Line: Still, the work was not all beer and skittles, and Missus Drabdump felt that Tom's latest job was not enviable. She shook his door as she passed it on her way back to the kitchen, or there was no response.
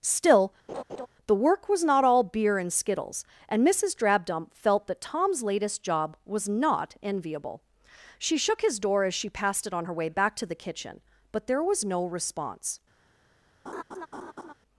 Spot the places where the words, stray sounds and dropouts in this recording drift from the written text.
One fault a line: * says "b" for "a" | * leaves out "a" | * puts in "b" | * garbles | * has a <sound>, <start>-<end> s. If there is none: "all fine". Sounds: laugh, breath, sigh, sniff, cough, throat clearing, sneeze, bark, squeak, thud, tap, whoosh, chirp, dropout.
* has a laugh, 0.7-1.1 s
* says "but" for "or"
* has a laugh, 13.7-14.5 s